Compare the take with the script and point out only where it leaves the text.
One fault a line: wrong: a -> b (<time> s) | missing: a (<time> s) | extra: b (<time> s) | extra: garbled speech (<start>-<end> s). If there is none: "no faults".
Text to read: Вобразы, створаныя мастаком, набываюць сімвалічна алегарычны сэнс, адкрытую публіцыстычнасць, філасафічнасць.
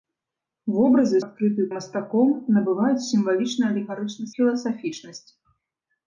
wrong: створаныя -> адкрытую (1.3 s)
missing: сэнс адкрытую публіцыстычнасць (4.3 s)